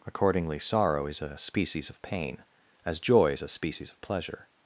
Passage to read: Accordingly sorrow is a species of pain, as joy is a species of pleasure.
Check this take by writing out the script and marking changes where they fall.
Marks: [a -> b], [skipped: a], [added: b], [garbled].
Accordingly sorrow is a species of pain, as joy is a species of pleasure.